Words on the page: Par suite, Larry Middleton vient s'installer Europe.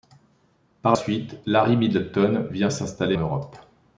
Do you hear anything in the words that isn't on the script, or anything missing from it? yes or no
no